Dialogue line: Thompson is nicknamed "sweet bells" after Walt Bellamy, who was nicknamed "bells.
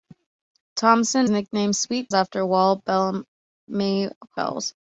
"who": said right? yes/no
no